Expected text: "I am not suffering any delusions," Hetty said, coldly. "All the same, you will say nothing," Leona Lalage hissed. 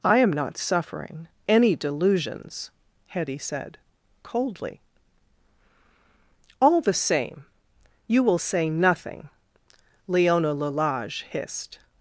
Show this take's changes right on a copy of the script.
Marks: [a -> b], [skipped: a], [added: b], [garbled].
"I am not suffering any delusions," Hetty said, coldly. "All the same, you will say nothing," Leona Lalage hissed.